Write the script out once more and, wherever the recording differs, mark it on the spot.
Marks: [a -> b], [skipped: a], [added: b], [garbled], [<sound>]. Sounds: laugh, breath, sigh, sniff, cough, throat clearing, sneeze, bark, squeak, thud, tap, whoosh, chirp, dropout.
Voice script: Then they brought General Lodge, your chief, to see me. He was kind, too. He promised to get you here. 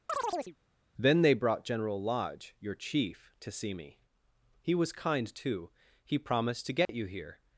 [chirp] Then they brought General Lodge, your chief, to see me. He was kind, too. He promised to get [dropout] you here.